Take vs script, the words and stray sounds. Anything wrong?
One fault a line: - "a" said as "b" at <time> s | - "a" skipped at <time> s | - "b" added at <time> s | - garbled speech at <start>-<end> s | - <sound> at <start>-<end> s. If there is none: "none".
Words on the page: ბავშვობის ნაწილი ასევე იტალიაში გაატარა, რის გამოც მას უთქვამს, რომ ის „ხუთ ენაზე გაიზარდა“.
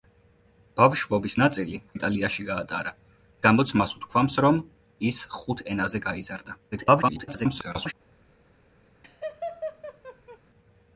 - "ასევე" skipped at 1.8 s
- "რის" skipped at 2.9 s
- garbled speech at 6.7-7.9 s
- laugh at 9.0-10.4 s